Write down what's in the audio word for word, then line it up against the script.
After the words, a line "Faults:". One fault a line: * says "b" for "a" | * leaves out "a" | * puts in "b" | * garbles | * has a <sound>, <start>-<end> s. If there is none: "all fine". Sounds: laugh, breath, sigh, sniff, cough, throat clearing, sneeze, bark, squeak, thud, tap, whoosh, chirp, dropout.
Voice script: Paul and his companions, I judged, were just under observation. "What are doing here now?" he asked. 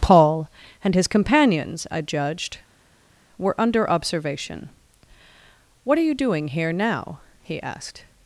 Paul and his companions, I judged, were under observation. "What are you doing here now?" he asked.
Faults:
* leaves out "just"
* puts in "you"